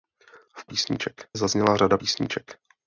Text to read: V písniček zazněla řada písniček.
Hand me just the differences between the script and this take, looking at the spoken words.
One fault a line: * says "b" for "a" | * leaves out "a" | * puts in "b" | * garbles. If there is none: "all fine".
all fine